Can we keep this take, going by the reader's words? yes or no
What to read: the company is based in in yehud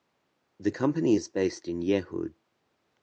no